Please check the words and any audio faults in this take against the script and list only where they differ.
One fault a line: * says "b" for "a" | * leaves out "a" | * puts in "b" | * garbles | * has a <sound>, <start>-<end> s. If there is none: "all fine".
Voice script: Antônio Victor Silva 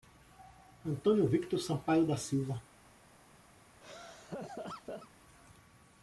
* puts in "Sampaio da"
* has a laugh, 3.8-5.1 s